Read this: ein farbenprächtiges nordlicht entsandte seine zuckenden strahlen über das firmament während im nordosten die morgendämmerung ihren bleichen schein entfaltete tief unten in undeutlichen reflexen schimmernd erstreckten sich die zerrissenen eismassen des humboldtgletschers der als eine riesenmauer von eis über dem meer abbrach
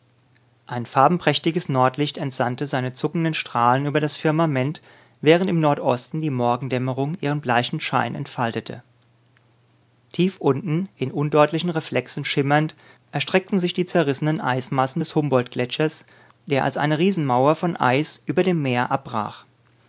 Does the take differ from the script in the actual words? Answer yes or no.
no